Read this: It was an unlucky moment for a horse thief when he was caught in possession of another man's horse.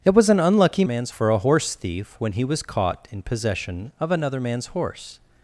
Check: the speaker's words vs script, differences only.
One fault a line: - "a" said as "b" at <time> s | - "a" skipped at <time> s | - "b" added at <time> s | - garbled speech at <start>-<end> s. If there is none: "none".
- "moment" said as "man's" at 0.8 s